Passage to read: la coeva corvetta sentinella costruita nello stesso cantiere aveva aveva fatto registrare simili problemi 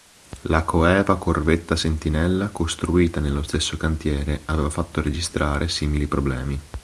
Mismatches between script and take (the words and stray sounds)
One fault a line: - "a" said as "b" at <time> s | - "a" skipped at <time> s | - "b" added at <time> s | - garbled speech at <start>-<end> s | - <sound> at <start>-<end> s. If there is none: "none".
- "aveva" skipped at 4.7 s